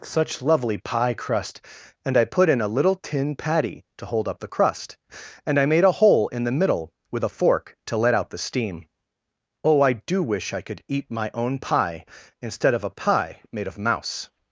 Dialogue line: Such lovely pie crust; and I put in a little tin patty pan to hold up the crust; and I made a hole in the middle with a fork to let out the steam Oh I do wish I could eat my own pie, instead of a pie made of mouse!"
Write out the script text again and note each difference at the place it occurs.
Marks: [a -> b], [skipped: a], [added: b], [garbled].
Such lovely pie crust; and I put in a little tin patty [skipped: pan] to hold up the crust; and I made a hole in the middle with a fork to let out the steam Oh I do wish I could eat my own pie, instead of a pie made of mouse!"